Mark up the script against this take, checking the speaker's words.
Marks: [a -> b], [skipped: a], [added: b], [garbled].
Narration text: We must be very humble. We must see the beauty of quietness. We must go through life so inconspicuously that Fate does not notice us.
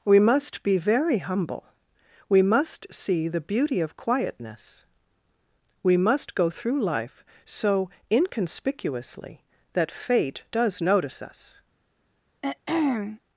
We must be very humble. We must see the beauty of quietness. We must go through life so inconspicuously that Fate does [skipped: not] notice us.